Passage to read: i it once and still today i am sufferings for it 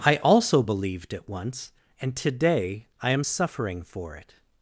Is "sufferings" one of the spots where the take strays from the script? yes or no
yes